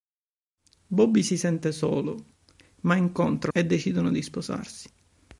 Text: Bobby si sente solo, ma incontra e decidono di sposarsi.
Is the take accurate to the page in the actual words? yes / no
yes